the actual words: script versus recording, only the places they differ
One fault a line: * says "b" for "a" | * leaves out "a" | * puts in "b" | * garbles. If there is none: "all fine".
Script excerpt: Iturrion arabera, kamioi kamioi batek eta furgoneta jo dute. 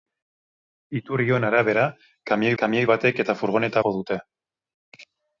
all fine